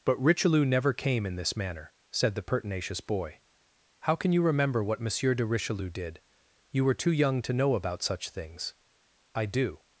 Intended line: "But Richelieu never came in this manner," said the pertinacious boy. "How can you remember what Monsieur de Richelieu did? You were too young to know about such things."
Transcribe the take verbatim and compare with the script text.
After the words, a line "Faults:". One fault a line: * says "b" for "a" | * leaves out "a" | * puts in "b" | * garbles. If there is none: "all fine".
"But Richelieu never came in this manner," said the pertinacious boy. "How can you remember what Monsieur de Richelieu did? You were too young to know about such things." "I do
Faults:
* puts in "I do"